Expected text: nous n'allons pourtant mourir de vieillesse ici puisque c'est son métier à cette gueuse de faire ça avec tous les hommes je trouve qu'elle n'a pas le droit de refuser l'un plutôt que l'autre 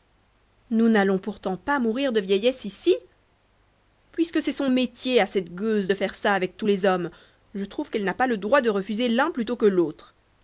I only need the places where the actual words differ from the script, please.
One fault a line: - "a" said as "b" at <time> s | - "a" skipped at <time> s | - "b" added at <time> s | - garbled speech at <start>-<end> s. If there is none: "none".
- "pas" added at 1.6 s